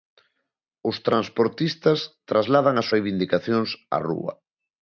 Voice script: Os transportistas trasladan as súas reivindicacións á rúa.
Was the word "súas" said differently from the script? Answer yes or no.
yes